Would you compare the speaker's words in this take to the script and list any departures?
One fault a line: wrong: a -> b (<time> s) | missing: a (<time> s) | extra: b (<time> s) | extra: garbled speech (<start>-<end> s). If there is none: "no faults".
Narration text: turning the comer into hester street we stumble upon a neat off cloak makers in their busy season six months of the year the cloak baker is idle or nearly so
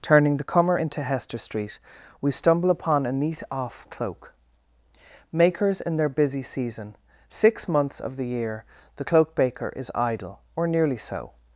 no faults